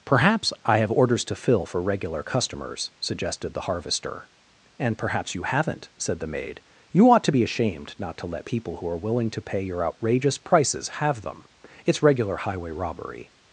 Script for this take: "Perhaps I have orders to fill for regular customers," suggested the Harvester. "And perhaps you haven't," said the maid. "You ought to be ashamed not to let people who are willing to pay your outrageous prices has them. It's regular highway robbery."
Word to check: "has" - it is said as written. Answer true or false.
false